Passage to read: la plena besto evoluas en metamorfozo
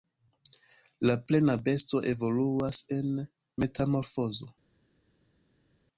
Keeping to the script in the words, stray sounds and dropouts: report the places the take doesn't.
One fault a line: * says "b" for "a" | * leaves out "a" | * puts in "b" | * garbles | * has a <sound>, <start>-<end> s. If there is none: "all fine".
all fine